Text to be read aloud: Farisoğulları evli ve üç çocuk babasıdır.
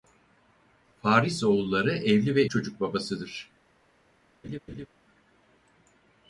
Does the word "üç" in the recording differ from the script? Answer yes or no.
yes